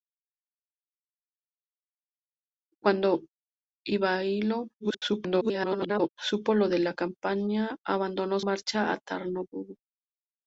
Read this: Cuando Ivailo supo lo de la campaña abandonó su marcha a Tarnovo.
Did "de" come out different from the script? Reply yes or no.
no